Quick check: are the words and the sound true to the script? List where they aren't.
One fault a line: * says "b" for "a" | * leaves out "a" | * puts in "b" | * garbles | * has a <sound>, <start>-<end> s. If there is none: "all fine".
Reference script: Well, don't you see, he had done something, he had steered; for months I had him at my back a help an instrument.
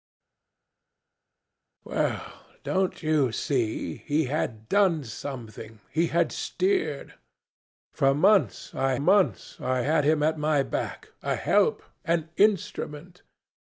* puts in "months I"